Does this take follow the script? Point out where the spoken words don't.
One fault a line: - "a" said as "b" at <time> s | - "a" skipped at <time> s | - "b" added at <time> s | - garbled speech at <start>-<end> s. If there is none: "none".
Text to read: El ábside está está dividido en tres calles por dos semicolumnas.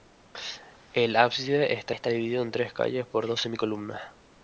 none